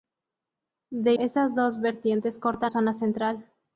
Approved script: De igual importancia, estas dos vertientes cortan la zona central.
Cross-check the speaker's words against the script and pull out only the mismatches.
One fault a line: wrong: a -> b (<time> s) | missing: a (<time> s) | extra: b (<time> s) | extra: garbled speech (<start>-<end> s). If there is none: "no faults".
missing: igual importancia (1.1 s)
missing: la (2.7 s)